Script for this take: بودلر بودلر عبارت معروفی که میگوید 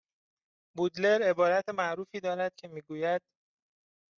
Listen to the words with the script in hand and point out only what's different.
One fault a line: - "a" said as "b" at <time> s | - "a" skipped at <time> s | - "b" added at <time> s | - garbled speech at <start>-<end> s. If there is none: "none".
- "بودلر" skipped at 1.2 s
- "دارد" added at 2.2 s